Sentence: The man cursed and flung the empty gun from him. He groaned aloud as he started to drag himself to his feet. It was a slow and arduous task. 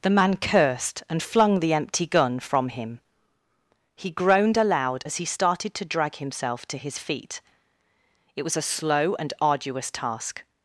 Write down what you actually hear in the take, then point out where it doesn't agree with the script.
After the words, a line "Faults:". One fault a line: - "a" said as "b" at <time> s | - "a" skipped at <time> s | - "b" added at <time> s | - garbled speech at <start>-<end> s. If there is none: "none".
The man cursed and flung the empty gun from him. He groaned aloud as he started to drag himself to his feet. It was a slow and arduous task.
Faults:
none